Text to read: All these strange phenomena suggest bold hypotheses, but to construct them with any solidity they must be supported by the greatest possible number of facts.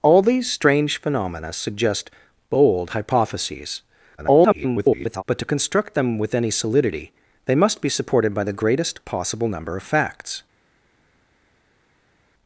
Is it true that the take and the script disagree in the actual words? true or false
true